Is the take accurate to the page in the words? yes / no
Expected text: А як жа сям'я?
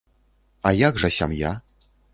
yes